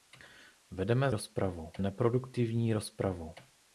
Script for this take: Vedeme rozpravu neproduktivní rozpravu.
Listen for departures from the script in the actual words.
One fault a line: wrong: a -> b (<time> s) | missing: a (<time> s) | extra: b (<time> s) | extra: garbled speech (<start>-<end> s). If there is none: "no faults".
no faults